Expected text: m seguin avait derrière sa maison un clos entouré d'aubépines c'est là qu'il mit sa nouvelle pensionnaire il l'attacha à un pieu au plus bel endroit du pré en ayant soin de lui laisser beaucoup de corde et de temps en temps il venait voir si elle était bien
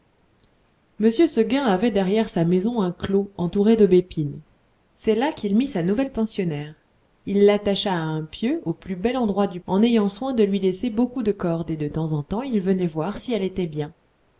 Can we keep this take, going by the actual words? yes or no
no